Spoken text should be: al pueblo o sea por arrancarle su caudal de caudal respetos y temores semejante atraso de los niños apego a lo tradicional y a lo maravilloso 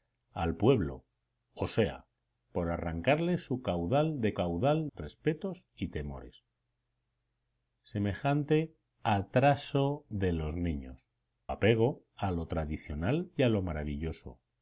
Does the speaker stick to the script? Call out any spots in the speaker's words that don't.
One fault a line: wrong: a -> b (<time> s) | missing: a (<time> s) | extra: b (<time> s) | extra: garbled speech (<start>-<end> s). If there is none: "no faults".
no faults